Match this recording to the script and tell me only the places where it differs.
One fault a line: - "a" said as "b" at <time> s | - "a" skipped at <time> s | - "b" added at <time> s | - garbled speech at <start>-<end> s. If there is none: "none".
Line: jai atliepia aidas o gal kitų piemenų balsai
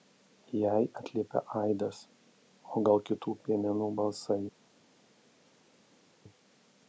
none